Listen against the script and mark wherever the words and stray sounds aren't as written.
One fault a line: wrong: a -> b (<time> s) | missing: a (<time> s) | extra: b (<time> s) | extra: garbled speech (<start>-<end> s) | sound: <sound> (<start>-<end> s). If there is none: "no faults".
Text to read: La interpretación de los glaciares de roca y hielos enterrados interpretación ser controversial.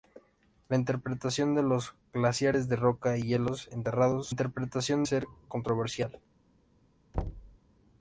sound: thud (7.1-7.6 s)